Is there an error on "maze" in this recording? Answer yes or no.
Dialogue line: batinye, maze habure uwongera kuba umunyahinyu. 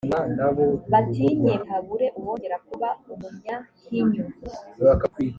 yes